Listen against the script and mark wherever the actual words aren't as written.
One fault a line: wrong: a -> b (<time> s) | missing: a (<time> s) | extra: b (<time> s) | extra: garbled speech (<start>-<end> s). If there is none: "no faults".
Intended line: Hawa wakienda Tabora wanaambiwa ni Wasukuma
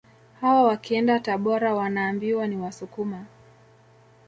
no faults